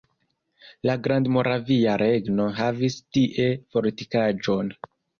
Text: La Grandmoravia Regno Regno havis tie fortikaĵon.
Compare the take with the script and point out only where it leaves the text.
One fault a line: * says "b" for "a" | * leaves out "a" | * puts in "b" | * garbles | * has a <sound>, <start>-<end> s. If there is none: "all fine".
* leaves out "Regno"